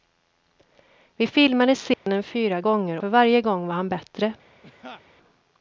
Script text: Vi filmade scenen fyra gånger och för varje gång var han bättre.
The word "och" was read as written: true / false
false